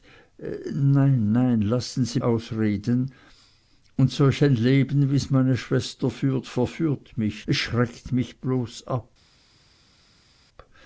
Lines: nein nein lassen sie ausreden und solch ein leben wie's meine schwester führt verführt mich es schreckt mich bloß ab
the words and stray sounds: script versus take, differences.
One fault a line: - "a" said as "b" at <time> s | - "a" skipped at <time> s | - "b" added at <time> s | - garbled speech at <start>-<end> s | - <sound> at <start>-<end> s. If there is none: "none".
none